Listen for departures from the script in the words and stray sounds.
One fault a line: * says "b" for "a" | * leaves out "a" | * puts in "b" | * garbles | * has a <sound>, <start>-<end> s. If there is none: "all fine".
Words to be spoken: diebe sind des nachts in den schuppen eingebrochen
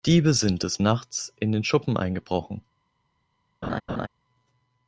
* has a laugh, 3.6-4.1 s